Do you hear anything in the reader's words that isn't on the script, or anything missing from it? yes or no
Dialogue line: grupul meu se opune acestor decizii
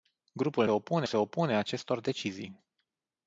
yes